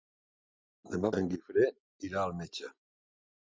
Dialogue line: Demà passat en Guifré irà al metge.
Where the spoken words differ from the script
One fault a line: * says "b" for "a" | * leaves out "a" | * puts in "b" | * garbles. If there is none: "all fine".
* leaves out "passat"